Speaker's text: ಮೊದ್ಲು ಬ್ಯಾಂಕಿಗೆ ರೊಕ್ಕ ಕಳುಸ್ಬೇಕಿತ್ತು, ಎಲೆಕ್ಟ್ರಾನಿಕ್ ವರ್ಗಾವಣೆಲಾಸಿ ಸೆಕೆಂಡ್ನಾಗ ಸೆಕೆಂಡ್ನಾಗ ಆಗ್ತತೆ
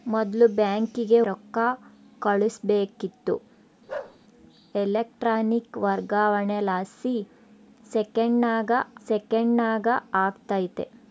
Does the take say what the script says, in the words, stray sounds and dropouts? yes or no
no